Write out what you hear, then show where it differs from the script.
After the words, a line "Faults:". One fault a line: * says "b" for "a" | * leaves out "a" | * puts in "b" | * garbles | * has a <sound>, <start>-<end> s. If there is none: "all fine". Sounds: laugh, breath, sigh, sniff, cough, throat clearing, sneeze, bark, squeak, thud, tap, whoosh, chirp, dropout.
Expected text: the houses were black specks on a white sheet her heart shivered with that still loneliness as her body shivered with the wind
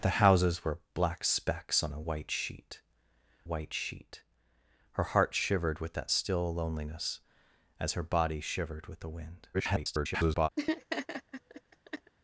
the houses were black specks on a white sheet white sheet her heart shivered with that still loneliness as her body shivered with the wind [garbled]
Faults:
* puts in "white sheet"
* garbles
* has a laugh, 10.6-12.1 s